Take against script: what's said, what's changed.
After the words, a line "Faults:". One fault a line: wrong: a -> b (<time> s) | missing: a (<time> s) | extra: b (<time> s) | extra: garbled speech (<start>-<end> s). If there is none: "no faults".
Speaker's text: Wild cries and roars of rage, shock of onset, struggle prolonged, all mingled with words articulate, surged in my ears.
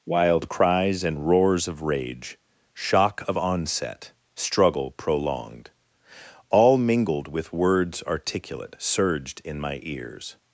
Wild cries and roars of rage, shock of onset, struggle prolonged, all mingled with words articulate, surged in my ears.
Faults:
no faults